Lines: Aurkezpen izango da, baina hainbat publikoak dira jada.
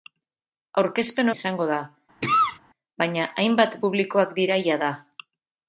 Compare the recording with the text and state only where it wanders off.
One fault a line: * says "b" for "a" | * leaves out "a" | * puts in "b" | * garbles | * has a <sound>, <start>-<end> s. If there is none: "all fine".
* has a cough, 2.2-2.6 s